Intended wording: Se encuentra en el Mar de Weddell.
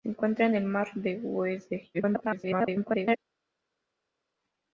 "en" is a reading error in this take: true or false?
false